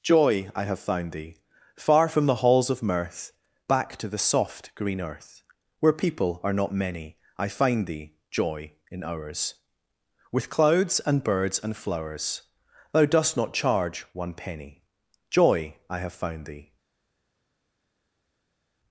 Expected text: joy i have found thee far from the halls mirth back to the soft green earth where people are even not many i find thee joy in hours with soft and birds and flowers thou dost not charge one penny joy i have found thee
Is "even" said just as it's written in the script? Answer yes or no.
no